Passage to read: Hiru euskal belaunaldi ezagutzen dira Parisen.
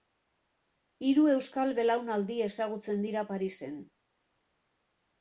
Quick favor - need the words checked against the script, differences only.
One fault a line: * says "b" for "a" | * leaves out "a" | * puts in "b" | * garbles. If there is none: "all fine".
all fine